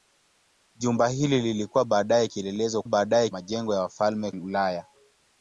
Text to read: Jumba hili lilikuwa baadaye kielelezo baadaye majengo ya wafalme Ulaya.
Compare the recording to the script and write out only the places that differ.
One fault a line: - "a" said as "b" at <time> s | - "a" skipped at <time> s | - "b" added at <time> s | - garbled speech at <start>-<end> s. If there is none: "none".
none